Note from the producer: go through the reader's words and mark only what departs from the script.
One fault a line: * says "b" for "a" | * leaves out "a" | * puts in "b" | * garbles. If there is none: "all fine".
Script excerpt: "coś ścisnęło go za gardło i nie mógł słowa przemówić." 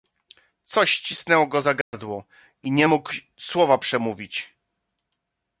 all fine